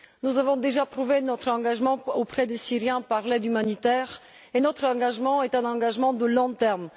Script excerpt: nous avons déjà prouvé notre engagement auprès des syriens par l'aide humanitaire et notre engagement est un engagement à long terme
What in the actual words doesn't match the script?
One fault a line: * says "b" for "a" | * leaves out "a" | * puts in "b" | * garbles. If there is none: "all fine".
all fine